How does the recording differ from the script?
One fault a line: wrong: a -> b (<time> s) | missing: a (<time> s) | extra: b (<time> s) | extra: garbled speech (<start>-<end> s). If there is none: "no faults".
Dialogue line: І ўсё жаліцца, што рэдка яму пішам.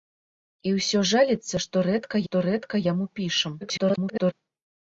extra: што рэдка (2.3 s)
extra: garbled speech (3.6-4.3 s)